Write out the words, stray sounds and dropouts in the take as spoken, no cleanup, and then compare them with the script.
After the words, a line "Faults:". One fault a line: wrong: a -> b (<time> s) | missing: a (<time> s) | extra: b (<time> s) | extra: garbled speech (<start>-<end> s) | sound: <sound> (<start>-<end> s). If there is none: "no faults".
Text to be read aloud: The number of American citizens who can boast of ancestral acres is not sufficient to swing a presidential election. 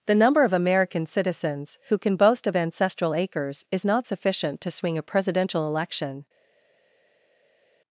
The number of American citizens who can boast of ancestral acres is not sufficient to swing a presidential election.
Faults:
no faults